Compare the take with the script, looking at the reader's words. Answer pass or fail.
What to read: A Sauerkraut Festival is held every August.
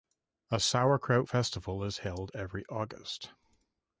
pass